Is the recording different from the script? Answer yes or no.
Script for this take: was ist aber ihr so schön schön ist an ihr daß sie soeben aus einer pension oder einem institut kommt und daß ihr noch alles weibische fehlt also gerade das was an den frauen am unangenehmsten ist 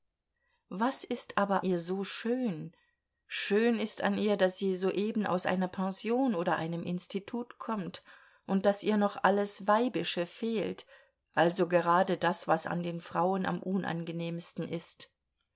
no